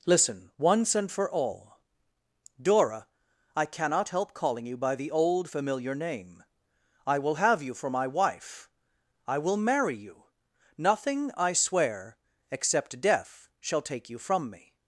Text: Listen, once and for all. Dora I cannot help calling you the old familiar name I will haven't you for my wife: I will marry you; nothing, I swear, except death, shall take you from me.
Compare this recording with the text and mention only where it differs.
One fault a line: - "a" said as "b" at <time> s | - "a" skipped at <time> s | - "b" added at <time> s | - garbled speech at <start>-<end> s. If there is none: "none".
- "by" added at 4.8 s
- "haven't" said as "have" at 7.4 s